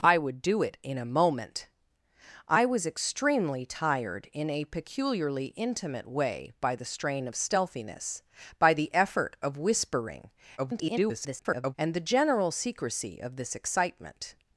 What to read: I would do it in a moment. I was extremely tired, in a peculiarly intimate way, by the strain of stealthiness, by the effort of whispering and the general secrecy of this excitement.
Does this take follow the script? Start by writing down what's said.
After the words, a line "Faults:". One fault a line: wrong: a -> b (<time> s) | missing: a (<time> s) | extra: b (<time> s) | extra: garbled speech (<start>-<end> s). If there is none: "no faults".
I would do it in a moment. I was extremely tired, in a peculiarly intimate way, by the strain of stealthiness, by the effort of whispering [garbled] and the general secrecy of this excitement.
Faults:
extra: garbled speech (10.6-11.7 s)